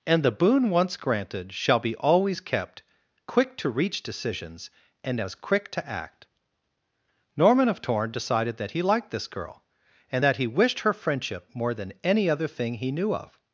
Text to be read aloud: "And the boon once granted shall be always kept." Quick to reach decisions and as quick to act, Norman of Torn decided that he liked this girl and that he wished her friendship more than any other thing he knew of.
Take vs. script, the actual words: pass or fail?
pass